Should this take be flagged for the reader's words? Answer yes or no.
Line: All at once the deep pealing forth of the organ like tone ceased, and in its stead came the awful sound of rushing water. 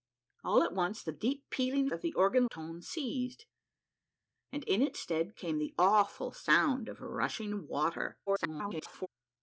yes